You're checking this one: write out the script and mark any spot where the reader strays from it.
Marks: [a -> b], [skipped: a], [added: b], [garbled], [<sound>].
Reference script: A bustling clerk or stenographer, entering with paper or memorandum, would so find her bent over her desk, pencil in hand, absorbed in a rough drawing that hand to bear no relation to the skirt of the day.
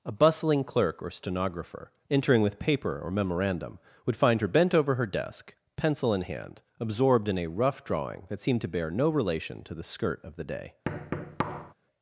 A bustling clerk or stenographer, entering with paper or memorandum, would [skipped: so] find her bent over her desk, pencil in hand, absorbed in a rough drawing that [hand -> seemed] to bear no relation to the skirt of the day. [thud]